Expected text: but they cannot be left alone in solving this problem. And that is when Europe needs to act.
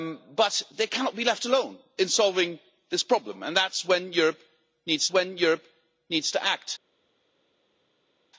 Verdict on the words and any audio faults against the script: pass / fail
fail